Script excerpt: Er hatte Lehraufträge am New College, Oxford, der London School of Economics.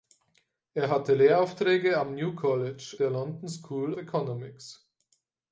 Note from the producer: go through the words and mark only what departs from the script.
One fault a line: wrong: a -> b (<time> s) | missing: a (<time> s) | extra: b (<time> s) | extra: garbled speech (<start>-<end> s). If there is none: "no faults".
missing: Oxford (3.0 s)
missing: of (3.9 s)